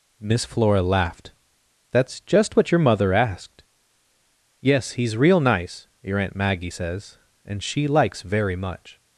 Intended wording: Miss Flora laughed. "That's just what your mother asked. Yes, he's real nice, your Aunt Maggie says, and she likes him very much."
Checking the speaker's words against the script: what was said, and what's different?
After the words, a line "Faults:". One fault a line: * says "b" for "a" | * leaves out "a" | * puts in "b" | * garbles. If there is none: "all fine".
Miss Flora laughed. "That's just what your mother asked. Yes, he's real nice, your Aunt Maggie says, and she likes very much."
Faults:
* leaves out "him"